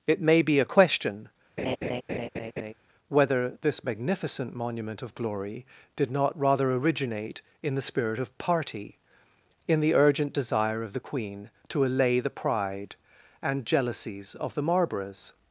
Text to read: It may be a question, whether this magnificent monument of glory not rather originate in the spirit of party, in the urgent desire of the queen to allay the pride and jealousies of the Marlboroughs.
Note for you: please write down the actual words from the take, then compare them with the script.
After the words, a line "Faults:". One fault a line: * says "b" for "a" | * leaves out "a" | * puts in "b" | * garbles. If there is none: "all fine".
It may be a question, whether this magnificent monument of glory did not rather originate in the spirit of party, in the urgent desire of the queen to allay the pride and jealousies of the Marlboroughs.
Faults:
* puts in "did"